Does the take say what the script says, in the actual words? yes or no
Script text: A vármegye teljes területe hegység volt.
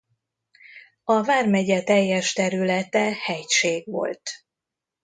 yes